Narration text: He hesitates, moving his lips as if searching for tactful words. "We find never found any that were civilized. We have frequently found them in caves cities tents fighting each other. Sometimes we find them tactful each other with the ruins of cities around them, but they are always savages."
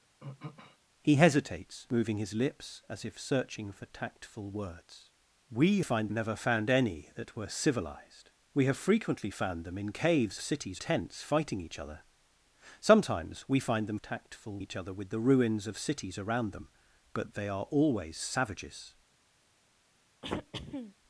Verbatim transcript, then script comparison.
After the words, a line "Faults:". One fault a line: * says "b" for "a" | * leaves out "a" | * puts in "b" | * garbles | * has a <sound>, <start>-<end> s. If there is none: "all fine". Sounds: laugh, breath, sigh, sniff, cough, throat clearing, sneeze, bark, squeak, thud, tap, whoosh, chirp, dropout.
He hesitates, moving his lips as if searching for tactful words. "We find never found any that were civilized. We have frequently found them in caves cities tents fighting each other. Sometimes we find them tactful each other with the ruins of cities around them, but they are always savages."
Faults:
* has a throat clearing, 0.2-0.8 s
* has a throat clearing, 20.2-20.9 s